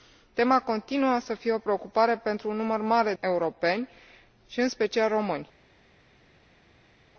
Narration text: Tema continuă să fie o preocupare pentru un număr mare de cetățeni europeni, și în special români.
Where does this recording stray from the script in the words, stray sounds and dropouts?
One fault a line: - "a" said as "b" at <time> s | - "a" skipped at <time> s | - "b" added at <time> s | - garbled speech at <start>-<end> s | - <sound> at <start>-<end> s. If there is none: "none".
- "de cetățeni" skipped at 3.1 s